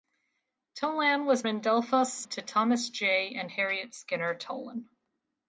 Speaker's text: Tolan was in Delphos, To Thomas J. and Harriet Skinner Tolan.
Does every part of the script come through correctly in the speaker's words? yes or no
yes